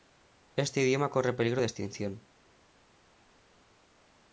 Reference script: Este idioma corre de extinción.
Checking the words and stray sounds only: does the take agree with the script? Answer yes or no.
no